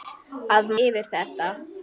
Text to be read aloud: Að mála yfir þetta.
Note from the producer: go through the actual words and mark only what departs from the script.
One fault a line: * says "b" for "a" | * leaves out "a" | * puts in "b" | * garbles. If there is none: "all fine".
* leaves out "mála"